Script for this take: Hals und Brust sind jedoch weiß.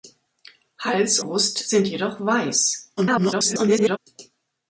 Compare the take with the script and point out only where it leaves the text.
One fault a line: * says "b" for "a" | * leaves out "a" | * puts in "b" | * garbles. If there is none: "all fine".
* leaves out "und"
* garbles